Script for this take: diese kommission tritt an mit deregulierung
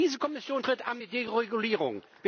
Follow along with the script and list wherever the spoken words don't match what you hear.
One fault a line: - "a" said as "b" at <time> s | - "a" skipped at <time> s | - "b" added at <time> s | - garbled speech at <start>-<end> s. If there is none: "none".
none